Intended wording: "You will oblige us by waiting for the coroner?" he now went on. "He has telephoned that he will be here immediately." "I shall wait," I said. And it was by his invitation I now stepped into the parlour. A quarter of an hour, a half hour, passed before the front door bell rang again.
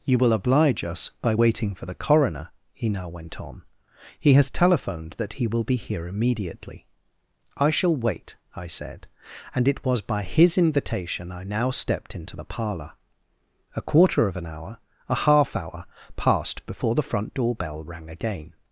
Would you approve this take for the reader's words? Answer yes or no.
yes